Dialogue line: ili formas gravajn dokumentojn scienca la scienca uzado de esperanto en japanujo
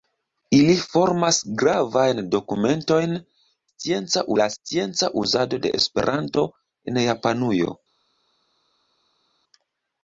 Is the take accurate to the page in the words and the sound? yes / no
yes